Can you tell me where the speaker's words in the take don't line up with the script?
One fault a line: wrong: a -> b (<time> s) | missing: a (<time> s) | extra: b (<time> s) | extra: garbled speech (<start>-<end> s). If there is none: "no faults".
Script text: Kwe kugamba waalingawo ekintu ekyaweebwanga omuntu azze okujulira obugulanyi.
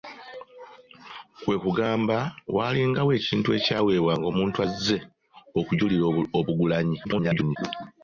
extra: garbled speech (7.0-7.6 s)